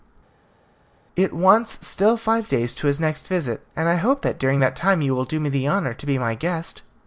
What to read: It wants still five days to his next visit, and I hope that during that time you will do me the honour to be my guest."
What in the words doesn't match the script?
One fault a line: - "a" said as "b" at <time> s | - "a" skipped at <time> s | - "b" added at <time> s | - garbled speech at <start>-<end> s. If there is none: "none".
none